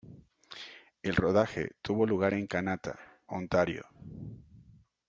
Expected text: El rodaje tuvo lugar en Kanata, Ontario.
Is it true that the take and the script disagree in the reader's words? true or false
false